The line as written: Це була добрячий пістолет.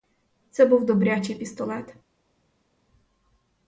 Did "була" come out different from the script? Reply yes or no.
yes